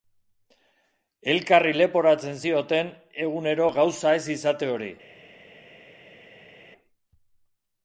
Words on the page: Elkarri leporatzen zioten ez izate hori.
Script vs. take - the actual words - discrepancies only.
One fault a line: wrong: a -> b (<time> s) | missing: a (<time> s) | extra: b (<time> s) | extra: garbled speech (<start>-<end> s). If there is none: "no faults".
extra: egunero gauza (3.3 s)